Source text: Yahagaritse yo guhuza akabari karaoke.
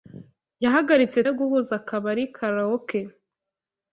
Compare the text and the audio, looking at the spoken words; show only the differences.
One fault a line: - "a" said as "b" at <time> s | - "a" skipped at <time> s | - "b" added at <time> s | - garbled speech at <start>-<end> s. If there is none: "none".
none